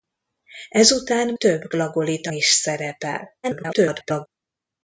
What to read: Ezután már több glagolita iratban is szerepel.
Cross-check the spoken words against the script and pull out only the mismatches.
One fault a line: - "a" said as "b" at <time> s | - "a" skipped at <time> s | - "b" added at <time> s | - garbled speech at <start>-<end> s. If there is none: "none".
- "már" skipped at 1.3 s
- "iratban" skipped at 2.3 s
- garbled speech at 3.4-4.3 s